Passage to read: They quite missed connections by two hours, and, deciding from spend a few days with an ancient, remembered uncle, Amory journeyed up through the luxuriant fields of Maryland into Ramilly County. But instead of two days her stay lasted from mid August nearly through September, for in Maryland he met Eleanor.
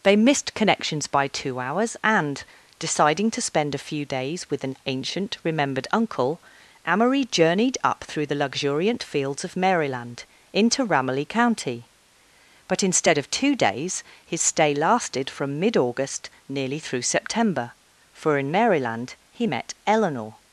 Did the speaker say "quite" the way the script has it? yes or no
no